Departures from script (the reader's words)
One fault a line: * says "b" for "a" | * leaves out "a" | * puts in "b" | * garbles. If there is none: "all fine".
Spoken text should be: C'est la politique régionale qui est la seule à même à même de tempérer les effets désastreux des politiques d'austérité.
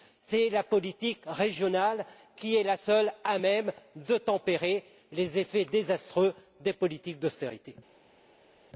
* leaves out "à même"